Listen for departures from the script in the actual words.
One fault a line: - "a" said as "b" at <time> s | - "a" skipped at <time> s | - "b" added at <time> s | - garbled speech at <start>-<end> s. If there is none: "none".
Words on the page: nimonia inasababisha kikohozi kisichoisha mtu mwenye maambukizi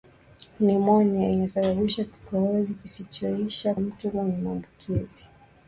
none